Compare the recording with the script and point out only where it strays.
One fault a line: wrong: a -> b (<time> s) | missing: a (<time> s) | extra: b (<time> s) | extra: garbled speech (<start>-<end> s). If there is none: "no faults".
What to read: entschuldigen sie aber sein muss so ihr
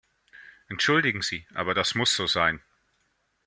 wrong: sein -> das (1.7 s)
wrong: ihr -> sein (2.3 s)